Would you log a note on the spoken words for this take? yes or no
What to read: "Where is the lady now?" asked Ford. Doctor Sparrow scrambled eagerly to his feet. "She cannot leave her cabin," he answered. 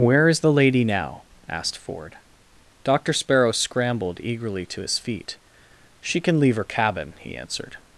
yes